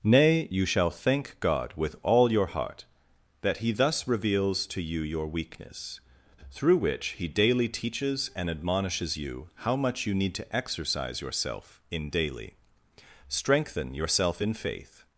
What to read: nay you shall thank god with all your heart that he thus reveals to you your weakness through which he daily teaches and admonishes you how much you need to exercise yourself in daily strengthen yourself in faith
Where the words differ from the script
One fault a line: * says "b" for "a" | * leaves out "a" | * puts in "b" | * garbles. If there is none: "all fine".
all fine